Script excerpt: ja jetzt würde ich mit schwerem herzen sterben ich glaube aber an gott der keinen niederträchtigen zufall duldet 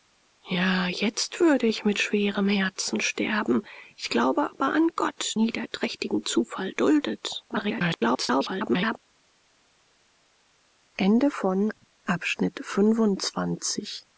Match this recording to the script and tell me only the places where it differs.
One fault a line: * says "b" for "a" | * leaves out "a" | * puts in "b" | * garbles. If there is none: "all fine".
* leaves out "der keinen"
* garbles